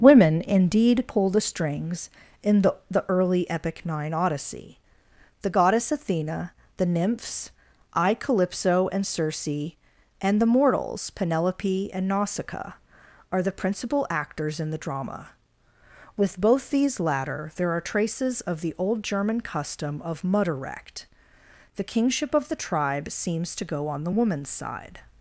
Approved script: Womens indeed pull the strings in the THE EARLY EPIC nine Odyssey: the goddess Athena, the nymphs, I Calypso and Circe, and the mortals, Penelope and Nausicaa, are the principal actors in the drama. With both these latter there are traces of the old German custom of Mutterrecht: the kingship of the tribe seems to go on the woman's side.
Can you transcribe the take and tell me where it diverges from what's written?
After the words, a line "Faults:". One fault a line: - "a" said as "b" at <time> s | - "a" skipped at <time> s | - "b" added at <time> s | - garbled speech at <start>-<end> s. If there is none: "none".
Women indeed pull the strings in the THE EARLY EPIC nine Odyssey: the goddess Athena, the nymphs, I Calypso and Circe, and the mortals, Penelope and Nausicaa, are the principal actors in the drama. With both these latter there are traces of the old German custom of Mutterrecht: the kingship of the tribe seems to go on the woman's side.
Faults:
- "Womens" said as "Women" at 0.0 s